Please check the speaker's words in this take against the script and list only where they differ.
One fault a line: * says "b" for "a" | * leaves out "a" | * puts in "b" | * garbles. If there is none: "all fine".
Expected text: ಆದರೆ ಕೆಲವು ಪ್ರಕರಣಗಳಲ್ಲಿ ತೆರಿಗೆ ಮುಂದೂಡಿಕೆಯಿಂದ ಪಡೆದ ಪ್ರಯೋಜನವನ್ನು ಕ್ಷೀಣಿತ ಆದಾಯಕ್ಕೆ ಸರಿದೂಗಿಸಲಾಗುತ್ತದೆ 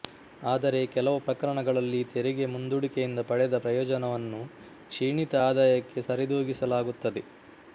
all fine